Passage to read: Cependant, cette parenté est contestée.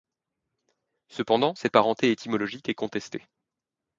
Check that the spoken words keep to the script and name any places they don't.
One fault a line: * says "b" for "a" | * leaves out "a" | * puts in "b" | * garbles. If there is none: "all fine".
* puts in "étymologique"